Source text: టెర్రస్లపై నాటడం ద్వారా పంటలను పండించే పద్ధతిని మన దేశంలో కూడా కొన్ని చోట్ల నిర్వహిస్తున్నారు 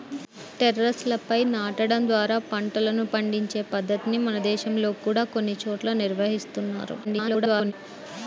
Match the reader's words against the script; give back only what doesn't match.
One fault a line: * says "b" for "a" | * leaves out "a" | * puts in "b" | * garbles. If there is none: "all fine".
* garbles